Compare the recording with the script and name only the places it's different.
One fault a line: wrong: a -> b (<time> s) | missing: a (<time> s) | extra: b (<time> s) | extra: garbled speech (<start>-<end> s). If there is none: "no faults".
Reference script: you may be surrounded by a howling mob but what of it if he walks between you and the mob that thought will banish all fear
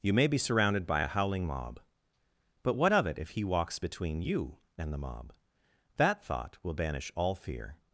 no faults